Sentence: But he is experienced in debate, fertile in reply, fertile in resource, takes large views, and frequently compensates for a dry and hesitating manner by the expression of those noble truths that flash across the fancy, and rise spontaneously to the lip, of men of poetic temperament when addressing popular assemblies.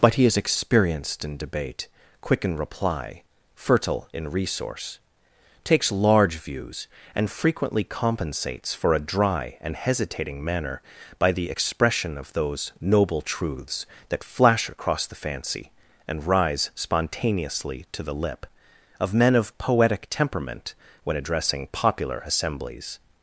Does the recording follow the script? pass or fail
fail